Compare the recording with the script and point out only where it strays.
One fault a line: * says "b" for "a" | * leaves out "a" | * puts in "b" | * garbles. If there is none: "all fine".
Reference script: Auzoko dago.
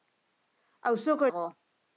all fine